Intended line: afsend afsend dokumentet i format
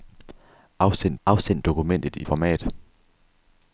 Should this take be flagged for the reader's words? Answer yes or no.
no